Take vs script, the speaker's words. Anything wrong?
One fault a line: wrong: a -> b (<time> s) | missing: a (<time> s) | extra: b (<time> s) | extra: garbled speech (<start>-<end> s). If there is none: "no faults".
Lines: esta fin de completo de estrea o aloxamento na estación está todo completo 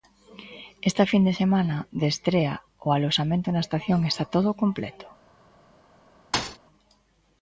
wrong: completo -> semana (1.4 s)